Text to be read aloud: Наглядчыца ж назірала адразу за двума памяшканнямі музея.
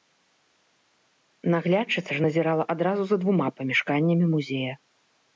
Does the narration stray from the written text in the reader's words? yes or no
no